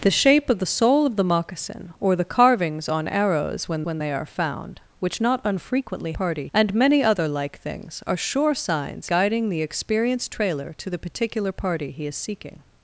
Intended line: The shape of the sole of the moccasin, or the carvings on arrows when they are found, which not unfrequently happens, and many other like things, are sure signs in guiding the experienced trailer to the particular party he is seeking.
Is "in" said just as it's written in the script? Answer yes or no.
no